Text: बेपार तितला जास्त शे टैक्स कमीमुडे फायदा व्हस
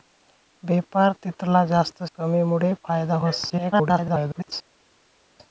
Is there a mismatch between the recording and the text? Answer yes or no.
yes